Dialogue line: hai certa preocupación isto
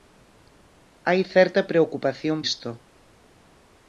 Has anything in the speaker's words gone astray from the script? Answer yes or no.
no